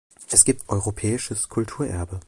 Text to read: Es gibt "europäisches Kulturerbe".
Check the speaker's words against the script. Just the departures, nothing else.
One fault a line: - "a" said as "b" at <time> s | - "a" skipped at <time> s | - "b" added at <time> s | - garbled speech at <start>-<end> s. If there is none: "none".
none